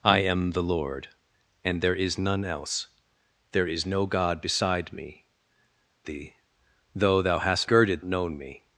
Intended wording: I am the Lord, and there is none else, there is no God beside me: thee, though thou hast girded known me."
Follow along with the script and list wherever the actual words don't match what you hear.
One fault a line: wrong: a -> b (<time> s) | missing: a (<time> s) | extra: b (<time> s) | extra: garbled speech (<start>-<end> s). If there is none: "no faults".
no faults